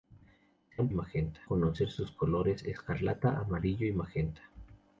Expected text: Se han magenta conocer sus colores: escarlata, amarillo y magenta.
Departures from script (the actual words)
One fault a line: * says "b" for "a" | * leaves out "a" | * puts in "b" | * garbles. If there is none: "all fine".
all fine